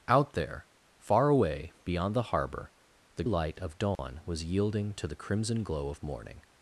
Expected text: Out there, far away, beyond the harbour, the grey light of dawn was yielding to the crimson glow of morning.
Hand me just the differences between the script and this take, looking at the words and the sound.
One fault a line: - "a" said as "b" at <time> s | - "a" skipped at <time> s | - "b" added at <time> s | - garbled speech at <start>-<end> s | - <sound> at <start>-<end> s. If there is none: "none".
- "grey" skipped at 3.2 s
- dropout at 4.0-4.0 s